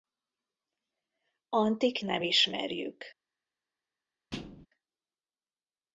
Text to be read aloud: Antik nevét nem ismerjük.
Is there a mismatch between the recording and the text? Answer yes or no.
yes